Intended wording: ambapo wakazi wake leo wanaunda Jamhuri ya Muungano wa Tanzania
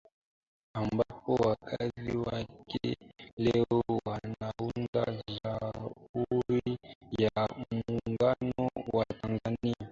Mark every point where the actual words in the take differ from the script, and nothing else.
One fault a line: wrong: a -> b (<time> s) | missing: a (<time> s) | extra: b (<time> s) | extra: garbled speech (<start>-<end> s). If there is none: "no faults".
no faults